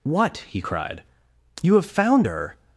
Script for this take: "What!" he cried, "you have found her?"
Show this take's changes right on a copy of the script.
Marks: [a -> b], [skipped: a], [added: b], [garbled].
"What!" he cried, "you have found her?"